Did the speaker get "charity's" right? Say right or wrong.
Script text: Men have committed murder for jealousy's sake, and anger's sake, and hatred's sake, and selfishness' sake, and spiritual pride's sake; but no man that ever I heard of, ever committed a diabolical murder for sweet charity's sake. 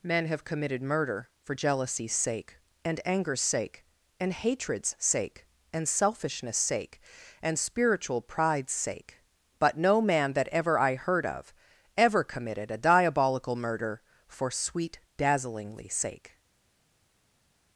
wrong